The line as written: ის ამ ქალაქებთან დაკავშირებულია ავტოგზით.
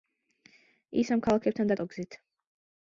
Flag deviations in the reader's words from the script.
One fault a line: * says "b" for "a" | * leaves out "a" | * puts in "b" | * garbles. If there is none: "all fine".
* leaves out "დაკავშირებულია"